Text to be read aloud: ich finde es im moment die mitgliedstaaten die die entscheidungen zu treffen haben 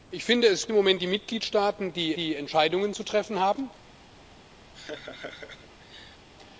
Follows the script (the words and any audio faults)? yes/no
no